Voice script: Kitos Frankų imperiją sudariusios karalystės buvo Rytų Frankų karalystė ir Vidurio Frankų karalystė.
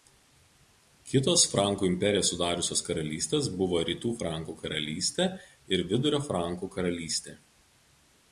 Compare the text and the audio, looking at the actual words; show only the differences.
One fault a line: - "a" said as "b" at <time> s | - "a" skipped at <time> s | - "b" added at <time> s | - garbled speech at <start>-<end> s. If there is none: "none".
none